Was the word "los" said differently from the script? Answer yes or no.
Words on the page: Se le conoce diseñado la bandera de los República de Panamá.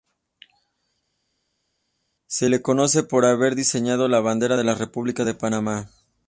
yes